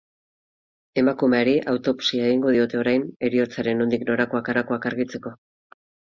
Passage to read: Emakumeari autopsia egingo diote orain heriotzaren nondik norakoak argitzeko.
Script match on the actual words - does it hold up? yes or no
no